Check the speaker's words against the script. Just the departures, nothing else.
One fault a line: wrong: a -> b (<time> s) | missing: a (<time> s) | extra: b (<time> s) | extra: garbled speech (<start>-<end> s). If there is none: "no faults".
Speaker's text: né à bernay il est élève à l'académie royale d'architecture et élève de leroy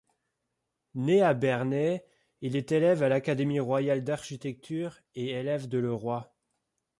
no faults